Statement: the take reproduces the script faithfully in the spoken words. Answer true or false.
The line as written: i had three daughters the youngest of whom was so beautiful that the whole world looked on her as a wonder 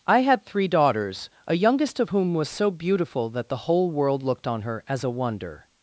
false